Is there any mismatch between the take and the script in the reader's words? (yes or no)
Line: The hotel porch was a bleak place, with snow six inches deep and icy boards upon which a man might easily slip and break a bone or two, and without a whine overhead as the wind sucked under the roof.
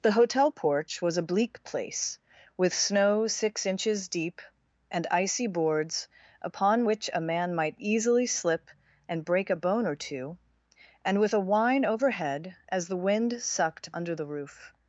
yes